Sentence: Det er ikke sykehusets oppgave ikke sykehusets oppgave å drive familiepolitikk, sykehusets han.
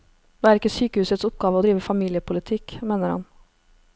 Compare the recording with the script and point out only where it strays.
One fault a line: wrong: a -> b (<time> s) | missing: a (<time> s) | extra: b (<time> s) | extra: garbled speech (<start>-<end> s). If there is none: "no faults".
missing: ikke sykehusets oppgave (1.6 s)
wrong: sykehusets -> mener (2.9 s)